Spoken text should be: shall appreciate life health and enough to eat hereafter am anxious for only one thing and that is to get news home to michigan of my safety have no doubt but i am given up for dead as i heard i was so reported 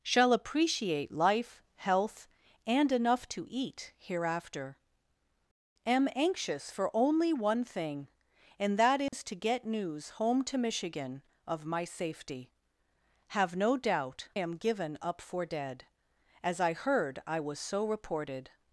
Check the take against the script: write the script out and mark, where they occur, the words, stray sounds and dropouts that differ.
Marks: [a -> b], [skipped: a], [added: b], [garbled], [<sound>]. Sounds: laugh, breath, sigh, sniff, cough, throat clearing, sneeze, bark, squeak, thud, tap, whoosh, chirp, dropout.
shall appreciate life health and enough to eat hereafter am anxious for only one thing and that is [dropout] to get news home to michigan of my safety have no doubt [skipped: but i] am given up for dead as i heard i was so reported